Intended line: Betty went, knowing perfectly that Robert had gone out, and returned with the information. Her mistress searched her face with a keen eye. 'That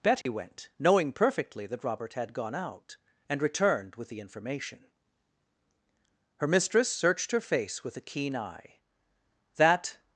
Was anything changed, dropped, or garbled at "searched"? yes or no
no